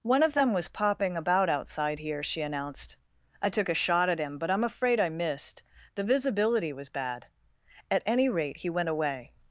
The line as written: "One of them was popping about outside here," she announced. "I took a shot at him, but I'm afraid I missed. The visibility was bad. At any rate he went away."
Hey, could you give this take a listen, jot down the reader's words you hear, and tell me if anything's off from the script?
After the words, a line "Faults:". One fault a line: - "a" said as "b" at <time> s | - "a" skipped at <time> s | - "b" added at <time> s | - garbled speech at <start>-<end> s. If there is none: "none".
"One of them was popping about outside here," she announced. "I took a shot at him, but I'm afraid I missed. The visibility was bad. At any rate he went away."
Faults:
none